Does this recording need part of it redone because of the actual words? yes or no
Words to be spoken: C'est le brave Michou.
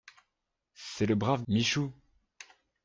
no